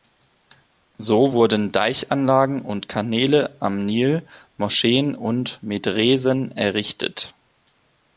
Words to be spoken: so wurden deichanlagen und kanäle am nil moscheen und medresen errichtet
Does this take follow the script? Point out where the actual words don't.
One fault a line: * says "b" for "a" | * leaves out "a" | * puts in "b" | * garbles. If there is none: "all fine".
all fine